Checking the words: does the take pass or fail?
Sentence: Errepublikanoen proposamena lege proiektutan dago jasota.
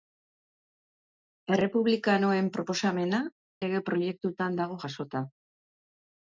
pass